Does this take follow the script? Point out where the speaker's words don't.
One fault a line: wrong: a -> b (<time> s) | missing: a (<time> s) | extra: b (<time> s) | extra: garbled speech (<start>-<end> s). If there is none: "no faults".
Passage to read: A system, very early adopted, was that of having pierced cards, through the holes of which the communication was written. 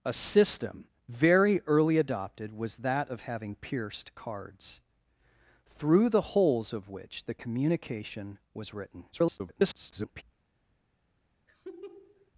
extra: garbled speech (9.1-10.2 s)